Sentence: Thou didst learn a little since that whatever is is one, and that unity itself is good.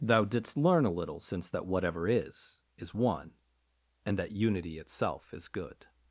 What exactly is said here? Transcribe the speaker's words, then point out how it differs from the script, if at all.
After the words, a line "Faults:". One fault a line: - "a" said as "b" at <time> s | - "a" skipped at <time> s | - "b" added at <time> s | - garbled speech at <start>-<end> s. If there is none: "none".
Thou didst learn a little since that whatever is is one, and that unity itself is good.
Faults:
none